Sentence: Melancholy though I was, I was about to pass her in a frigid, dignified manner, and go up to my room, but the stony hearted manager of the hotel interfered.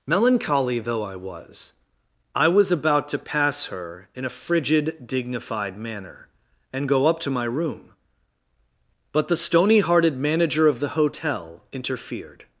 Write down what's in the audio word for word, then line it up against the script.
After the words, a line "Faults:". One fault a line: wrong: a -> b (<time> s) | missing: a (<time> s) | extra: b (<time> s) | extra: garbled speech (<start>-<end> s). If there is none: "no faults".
Melancholy though I was, I was about to pass her in a frigid, dignified manner, and go up to my room, but the stony hearted manager of the hotel interfered.
Faults:
no faults